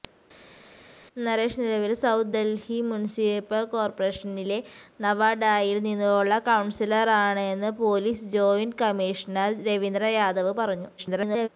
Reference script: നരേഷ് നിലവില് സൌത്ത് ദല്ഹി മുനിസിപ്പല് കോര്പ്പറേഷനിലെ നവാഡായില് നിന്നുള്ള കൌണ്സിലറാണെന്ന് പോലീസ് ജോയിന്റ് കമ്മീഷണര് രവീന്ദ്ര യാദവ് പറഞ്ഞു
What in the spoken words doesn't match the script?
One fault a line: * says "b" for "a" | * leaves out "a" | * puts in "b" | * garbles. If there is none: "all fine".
* garbles